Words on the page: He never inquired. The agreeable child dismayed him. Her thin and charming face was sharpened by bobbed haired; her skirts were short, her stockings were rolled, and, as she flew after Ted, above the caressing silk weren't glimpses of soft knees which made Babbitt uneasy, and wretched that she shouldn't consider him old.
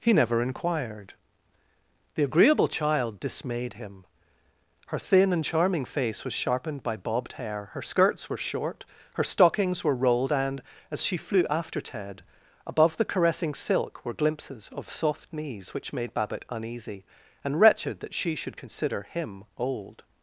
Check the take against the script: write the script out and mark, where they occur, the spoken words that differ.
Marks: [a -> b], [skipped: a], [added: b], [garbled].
He never inquired. The agreeable child dismayed him. Her thin and charming face was sharpened by bobbed [haired; -> hair] her skirts were short, her stockings were rolled, and, as she flew after Ted, above the caressing silk [weren't -> were] glimpses of soft knees which made Babbitt uneasy, and wretched that she [shouldn't -> should] consider him old.